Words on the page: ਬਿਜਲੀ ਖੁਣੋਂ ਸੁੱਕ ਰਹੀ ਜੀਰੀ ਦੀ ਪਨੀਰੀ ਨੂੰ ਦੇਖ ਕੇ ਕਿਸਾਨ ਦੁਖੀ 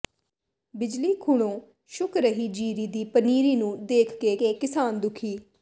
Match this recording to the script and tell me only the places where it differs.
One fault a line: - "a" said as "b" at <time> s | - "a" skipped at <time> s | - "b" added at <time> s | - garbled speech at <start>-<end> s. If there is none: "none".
- "ਕੇ" added at 4.4 s